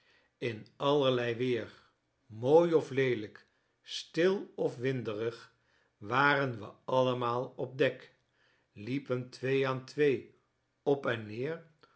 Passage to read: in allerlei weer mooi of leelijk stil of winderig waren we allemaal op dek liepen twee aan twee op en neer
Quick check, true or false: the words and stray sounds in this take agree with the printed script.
true